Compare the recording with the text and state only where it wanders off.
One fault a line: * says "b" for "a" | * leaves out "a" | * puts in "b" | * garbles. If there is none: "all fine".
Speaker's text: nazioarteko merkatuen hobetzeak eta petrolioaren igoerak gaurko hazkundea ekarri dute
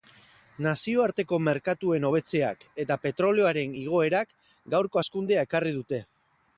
all fine